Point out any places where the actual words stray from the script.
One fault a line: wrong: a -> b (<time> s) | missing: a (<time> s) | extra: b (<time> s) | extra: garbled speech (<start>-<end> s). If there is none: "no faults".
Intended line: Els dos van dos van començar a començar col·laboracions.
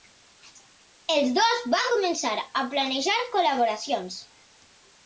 missing: dos van (1.9 s)
wrong: començar -> planejar (2.8 s)